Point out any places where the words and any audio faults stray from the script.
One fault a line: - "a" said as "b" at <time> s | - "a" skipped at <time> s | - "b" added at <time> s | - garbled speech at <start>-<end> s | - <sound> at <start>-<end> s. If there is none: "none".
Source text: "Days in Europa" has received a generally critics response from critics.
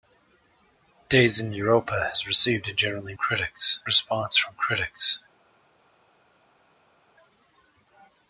none